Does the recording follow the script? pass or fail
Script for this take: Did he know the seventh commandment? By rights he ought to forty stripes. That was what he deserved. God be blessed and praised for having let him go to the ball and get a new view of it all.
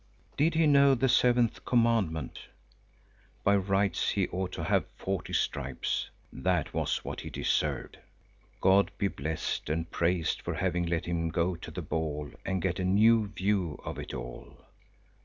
fail